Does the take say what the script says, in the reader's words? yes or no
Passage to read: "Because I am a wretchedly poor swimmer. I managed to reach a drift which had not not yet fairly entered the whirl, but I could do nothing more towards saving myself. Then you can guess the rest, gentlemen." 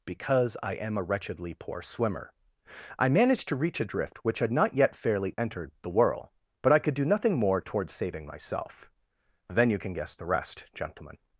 no